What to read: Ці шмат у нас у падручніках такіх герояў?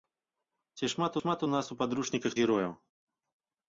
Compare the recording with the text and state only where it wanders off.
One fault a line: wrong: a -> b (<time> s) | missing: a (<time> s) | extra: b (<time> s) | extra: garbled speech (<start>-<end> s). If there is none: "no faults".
extra: шмат (1.2 s)
missing: такіх (2.3 s)